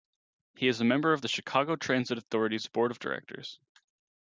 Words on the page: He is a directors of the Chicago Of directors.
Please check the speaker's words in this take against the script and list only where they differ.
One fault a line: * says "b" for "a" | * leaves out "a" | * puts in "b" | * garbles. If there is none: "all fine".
* says "member" for "directors"
* puts in "Transit Authority's board"